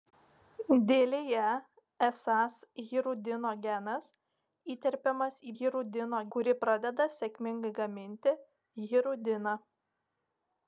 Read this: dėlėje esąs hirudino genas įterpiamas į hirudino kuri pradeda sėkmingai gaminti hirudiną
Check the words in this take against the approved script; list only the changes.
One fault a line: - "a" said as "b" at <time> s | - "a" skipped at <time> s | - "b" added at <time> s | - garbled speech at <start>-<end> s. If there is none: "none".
none